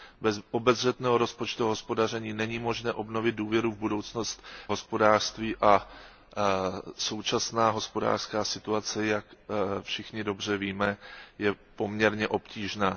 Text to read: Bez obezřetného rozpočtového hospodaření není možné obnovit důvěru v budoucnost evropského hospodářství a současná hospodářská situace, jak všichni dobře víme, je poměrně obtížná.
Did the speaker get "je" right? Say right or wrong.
right